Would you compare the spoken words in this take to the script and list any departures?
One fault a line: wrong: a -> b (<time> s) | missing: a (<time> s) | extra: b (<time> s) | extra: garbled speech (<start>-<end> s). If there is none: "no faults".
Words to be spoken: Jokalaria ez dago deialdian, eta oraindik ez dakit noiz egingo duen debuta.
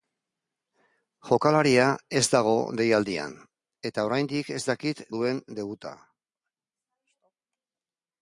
missing: noiz egingo (5.0 s)